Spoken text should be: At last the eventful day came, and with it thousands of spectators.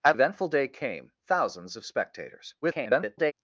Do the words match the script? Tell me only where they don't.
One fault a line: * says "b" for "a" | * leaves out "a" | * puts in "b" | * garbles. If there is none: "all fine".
* leaves out "last the"
* leaves out "and with it"
* garbles